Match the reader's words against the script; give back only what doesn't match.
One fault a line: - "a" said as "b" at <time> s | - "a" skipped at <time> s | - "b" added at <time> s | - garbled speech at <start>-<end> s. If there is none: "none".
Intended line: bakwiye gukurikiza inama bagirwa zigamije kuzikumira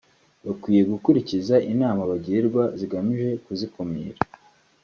none